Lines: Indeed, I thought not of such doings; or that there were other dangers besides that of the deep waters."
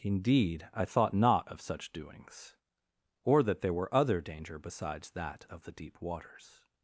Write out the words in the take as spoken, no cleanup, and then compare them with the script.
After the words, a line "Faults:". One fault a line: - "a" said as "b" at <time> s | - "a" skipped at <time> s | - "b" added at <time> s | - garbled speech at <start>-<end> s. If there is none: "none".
Indeed, I thought not of such doings; or that there were other danger besides that of the deep waters."
Faults:
- "dangers" said as "danger" at 4.2 s